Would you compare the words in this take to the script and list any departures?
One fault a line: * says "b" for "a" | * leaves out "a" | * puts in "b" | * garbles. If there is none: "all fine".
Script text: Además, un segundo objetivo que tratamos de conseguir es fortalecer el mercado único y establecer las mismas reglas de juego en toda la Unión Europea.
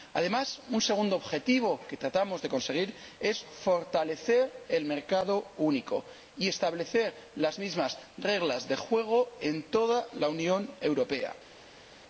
all fine